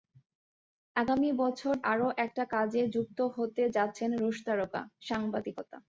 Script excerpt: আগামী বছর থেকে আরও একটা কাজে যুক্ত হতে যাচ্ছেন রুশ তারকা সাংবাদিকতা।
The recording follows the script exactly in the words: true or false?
false